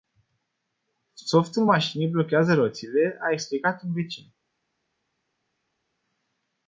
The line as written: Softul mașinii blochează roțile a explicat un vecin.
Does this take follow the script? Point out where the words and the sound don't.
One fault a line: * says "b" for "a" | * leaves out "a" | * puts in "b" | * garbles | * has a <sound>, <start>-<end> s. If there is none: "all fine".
all fine